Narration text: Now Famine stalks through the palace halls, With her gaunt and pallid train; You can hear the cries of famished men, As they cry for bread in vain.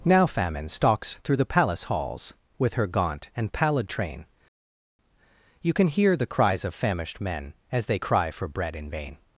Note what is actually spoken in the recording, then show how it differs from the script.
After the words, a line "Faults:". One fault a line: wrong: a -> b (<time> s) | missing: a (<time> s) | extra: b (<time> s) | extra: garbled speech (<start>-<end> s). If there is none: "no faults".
Now Famine stalks through the palace halls, With her gaunt and pallid train; You can hear the cries of famished men, As they cry for bread in vain.
Faults:
no faults